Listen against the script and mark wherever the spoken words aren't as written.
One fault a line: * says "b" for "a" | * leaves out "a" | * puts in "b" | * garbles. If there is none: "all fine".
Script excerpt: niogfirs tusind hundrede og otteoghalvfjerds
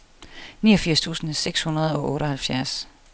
* puts in "seks"